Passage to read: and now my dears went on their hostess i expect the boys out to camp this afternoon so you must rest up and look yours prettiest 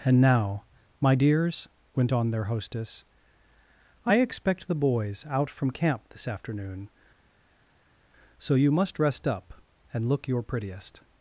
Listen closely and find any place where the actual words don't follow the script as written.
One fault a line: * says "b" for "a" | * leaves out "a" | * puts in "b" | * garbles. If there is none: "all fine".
* says "from" for "to"
* says "your" for "yours"